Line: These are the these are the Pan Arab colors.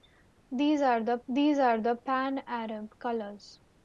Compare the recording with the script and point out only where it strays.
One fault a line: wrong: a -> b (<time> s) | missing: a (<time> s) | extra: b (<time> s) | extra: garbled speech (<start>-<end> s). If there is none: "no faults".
no faults